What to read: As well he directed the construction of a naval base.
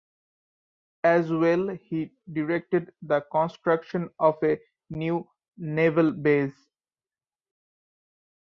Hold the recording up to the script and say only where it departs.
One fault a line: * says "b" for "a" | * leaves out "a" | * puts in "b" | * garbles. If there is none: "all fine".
* puts in "new"